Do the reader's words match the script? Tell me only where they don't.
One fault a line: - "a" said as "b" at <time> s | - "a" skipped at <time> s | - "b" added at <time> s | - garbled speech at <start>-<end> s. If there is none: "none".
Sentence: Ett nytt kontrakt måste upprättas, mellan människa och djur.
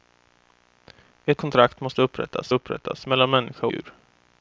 - "nytt" skipped at 1.4 s
- "upprättas" added at 2.5 s
- "och" skipped at 3.7 s